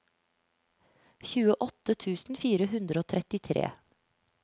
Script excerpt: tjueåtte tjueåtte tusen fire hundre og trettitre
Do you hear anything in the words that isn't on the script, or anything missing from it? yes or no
yes